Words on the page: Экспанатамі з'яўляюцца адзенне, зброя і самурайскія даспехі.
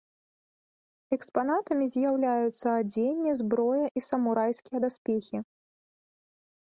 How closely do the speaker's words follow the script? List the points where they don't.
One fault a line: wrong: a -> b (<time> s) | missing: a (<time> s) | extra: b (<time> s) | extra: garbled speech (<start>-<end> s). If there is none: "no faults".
no faults